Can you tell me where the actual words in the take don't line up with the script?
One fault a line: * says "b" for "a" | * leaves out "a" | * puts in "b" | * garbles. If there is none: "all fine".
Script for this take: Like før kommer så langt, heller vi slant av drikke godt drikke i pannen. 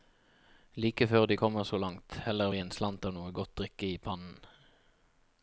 * puts in "de"
* puts in "en"
* says "noe" for "drikke"